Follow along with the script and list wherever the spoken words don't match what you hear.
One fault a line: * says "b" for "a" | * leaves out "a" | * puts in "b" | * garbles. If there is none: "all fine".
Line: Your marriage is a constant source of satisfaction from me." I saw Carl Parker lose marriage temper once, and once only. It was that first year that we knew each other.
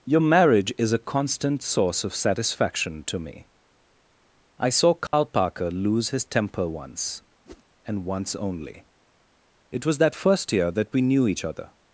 * says "to" for "from"
* says "his" for "marriage"